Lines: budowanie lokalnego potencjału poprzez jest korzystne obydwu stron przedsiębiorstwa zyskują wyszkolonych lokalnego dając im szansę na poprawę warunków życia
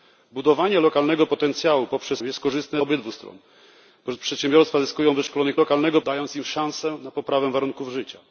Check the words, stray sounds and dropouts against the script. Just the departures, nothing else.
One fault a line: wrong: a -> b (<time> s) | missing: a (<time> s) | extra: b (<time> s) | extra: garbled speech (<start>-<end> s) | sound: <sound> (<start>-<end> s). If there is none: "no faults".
no faults